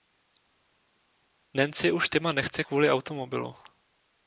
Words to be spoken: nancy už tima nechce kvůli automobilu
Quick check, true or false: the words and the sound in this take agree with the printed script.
true